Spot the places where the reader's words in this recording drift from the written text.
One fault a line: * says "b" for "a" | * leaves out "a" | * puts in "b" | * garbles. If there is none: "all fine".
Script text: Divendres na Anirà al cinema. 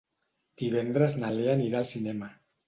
* puts in "Lea"